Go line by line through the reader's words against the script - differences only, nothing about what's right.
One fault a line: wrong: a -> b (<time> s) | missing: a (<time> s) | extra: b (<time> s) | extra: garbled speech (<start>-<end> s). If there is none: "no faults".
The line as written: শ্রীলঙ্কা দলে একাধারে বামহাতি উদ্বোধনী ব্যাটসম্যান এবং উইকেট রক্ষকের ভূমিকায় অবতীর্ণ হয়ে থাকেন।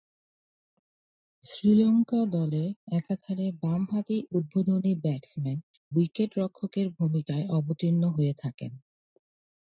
missing: এবং (5.6 s)